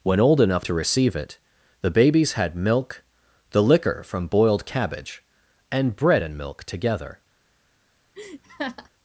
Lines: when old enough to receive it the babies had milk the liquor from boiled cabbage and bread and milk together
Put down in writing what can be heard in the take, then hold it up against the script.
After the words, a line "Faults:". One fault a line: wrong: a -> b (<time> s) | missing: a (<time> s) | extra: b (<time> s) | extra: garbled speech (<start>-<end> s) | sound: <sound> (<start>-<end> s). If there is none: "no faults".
when old enough to receive it the babies had milk the liquor from boiled cabbage and bread and milk together
Faults:
sound: laugh (8.1-8.9 s)